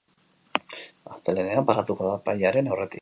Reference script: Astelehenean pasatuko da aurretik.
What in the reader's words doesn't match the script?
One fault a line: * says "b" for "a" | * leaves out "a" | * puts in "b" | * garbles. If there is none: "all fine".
* puts in "epailearen"